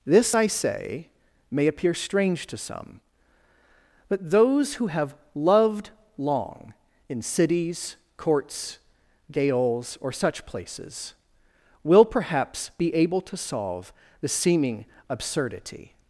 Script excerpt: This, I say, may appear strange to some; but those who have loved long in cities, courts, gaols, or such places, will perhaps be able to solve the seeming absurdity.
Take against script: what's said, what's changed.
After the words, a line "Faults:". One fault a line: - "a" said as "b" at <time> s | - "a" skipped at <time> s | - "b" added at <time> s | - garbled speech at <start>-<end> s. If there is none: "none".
This, I say, may appear strange to some; but those who have loved long in cities, courts, gaols, or such places, will perhaps be able to solve the seeming absurdity.
Faults:
none